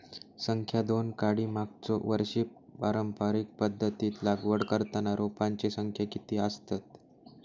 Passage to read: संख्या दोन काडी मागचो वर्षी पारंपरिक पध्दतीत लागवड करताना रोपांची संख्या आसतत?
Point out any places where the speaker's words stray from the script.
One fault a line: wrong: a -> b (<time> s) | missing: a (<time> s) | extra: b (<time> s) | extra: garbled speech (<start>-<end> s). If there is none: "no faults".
extra: किती (6.1 s)